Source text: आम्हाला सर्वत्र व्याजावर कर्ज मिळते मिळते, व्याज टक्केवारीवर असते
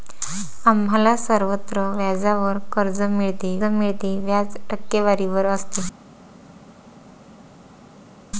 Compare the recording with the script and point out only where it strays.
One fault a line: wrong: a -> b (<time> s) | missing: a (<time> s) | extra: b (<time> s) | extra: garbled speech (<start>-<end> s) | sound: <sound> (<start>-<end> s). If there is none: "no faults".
no faults